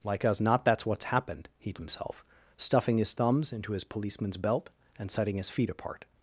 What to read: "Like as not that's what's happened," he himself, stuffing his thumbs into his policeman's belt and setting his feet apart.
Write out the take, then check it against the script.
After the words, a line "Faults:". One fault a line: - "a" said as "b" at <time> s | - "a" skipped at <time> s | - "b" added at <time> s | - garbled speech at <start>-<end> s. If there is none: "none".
"Like as not that's what's happened," he himself, stuffing his thumbs into his policeman's belt and setting his feet apart.
Faults:
none